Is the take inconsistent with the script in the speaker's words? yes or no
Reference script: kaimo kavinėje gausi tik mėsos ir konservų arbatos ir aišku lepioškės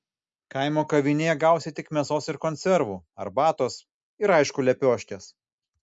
no